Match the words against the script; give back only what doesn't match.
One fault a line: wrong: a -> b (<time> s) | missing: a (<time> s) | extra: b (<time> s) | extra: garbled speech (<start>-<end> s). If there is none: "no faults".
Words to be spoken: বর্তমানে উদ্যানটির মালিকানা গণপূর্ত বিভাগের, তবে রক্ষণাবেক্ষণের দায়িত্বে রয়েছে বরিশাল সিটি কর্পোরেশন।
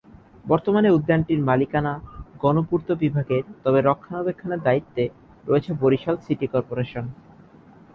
no faults